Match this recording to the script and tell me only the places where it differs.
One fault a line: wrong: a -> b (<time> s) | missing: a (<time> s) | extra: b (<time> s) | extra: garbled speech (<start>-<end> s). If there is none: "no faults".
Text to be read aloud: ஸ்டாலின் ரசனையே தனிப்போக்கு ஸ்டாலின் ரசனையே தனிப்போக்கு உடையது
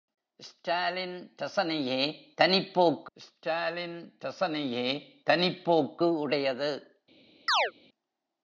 no faults